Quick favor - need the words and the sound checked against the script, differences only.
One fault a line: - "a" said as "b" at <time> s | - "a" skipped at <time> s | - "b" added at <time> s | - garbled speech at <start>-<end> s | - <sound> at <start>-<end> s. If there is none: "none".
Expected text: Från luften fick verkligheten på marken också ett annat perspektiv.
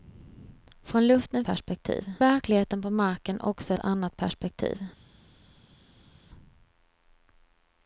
- "fick" said as "perspektiv" at 1.4 s
- "ett" skipped at 3.7 s